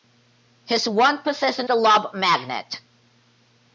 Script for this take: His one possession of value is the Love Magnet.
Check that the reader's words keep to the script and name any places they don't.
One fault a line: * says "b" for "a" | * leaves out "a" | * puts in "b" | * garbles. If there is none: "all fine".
* leaves out "of value is"